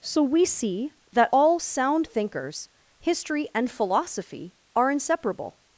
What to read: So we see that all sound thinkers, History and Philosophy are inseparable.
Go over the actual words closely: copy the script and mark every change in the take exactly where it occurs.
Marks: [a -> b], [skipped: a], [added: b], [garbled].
So we see that all sound thinkers, History and Philosophy are inseparable.